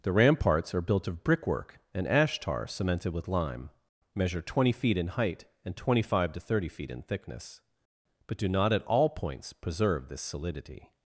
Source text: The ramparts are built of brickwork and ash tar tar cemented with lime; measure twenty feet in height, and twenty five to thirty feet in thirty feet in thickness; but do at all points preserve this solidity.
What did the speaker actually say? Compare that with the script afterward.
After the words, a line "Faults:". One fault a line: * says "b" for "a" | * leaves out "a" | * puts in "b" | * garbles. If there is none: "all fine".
The ramparts are built of brickwork and ash tar cemented with lime; measure twenty feet in height, and twenty five to thirty feet in thickness; but do not at all points preserve this solidity.
Faults:
* leaves out "tar"
* leaves out "thirty feet in"
* puts in "not"